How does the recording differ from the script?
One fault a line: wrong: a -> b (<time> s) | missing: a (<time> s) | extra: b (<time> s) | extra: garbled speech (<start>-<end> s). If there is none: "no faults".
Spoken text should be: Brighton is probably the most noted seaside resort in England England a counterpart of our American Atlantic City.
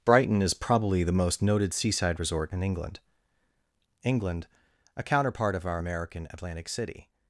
no faults